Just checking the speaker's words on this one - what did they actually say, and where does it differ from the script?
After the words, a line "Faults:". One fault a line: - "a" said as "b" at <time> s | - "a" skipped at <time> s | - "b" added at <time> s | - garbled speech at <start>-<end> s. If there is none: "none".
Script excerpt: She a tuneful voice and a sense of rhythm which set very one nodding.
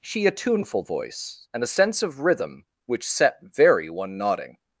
She a tuneful voice and a sense of rhythm which set very one nodding.
Faults:
none